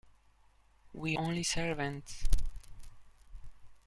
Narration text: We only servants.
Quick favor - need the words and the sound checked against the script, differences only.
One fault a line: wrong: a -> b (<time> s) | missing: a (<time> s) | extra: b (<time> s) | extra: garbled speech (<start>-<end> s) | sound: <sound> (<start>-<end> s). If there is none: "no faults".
no faults